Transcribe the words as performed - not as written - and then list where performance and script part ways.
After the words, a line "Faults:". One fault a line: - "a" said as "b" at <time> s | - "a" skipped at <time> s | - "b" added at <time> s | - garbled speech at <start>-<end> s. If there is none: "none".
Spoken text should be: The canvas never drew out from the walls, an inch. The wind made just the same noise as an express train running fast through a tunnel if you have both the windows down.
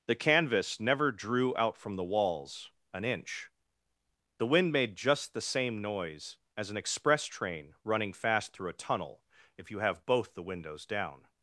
The canvas never drew out from the walls, an inch. The wind made just the same noise as an express train running fast through a tunnel if you have both the windows down.
Faults:
none